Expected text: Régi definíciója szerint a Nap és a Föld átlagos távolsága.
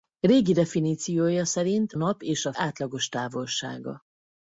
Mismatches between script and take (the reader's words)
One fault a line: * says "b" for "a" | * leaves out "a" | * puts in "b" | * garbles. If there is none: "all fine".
* leaves out "a"
* leaves out "Föld"